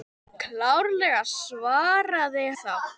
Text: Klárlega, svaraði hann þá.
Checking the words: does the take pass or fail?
fail